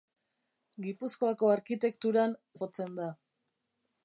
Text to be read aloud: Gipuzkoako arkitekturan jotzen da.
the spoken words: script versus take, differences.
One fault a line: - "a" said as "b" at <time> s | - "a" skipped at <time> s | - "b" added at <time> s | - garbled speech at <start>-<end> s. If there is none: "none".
none